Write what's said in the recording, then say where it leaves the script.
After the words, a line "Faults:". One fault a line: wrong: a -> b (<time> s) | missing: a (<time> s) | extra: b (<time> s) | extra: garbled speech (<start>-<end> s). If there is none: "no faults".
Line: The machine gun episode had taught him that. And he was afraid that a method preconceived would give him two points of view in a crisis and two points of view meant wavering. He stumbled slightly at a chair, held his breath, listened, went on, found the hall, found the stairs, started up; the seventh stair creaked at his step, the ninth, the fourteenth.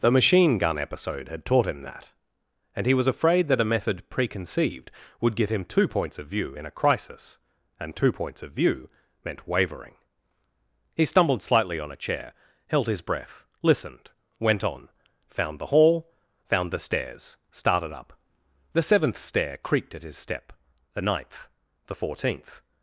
The machine gun episode had taught him that. And he was afraid that a method preconceived would give him two points of view in a crisis and two points of view meant wavering. He stumbled slightly on a chair, held his breath, listened, went on, found the hall, found the stairs, started up; the seventh stair creaked at his step, the ninth, the fourteenth.
Faults:
wrong: at -> on (11.8 s)